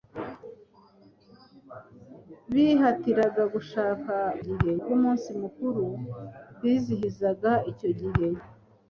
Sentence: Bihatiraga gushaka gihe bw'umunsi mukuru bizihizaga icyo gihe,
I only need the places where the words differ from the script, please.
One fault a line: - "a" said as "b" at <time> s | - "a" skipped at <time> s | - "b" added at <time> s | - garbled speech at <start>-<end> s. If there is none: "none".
none